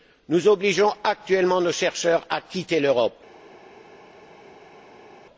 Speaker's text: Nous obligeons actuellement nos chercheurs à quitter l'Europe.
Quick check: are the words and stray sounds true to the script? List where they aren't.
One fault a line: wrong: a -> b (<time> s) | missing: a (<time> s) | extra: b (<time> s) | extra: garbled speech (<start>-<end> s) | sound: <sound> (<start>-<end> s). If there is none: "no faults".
no faults